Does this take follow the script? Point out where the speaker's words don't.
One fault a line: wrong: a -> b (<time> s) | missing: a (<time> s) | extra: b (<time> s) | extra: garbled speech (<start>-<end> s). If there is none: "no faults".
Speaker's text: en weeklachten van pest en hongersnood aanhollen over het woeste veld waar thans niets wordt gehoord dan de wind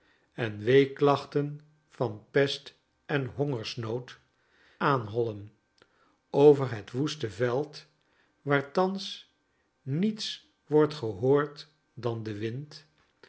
no faults